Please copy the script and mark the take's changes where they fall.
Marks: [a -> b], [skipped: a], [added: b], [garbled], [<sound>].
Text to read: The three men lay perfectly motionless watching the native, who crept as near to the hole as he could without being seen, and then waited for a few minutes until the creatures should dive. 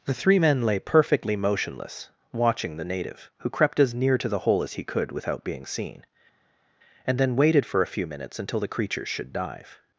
The three men lay perfectly motionless watching the native, who crept as near to the hole as he could without being seen, and then waited for a few minutes until the creatures should dive.